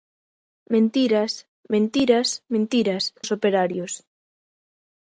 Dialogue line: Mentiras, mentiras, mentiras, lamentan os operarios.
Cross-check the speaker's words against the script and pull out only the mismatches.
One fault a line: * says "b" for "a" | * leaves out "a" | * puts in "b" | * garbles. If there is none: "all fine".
* leaves out "lamentan"